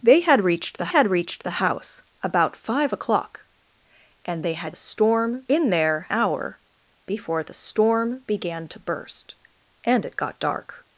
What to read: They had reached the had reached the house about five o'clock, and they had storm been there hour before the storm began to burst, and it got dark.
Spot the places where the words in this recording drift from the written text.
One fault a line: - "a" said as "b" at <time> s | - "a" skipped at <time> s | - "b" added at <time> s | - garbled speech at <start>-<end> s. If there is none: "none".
none